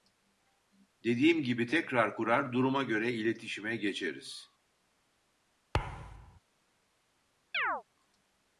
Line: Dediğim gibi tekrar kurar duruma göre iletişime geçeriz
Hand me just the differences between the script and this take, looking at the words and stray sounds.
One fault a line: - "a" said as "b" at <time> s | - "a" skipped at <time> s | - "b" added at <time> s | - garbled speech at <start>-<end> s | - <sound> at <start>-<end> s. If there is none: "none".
- thud at 5.7-6.4 s
- chirp at 7.5-7.8 s